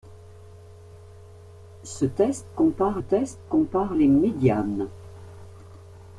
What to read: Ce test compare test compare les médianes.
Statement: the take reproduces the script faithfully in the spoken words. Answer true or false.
true